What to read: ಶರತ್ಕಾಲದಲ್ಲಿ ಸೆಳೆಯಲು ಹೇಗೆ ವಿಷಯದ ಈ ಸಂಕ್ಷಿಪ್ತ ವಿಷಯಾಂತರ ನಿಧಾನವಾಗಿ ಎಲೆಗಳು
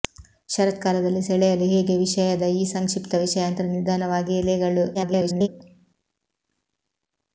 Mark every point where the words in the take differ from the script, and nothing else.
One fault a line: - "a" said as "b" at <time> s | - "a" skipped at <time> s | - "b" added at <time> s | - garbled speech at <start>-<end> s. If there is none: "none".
- garbled speech at 4.9-5.5 s